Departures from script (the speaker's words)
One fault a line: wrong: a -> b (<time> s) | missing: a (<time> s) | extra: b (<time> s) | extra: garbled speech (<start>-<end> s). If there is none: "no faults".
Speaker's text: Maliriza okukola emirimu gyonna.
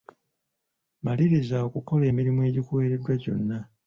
extra: egikuweereddwa (2.5 s)